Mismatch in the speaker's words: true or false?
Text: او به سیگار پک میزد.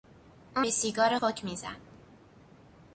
false